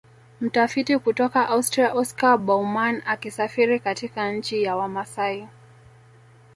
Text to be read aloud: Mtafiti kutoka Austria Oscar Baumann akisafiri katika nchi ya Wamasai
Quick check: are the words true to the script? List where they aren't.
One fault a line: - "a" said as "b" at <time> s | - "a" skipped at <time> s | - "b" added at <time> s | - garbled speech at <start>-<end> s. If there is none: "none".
none